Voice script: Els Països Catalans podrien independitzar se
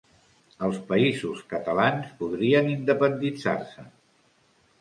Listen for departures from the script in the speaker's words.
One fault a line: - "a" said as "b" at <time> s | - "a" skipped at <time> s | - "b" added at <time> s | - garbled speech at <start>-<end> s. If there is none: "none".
none